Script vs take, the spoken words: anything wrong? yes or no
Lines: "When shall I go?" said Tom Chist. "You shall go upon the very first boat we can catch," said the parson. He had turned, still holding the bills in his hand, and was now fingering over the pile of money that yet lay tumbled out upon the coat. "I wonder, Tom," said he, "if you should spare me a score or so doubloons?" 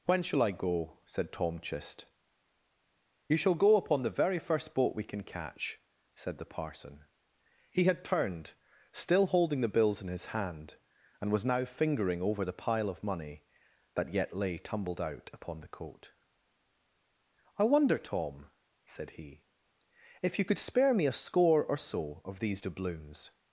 yes